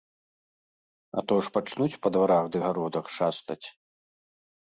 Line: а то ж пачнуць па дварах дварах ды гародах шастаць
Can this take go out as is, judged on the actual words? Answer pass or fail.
fail